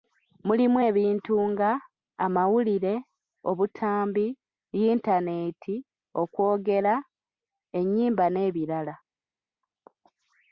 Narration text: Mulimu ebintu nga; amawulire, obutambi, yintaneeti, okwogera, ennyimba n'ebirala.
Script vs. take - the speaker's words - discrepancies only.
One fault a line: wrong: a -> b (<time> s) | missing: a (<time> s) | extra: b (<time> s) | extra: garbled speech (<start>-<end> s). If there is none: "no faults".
no faults